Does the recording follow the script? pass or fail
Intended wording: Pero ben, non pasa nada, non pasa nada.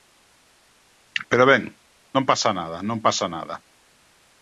pass